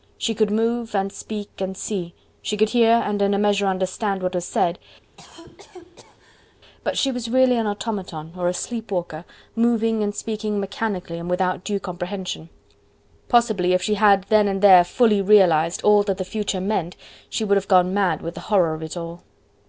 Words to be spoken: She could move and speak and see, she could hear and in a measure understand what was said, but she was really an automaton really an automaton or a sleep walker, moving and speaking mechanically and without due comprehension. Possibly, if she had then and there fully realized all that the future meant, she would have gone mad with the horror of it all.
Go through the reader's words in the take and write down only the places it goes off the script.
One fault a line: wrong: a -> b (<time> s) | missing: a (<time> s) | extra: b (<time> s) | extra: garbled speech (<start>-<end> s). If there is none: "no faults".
missing: really an automaton (8.3 s)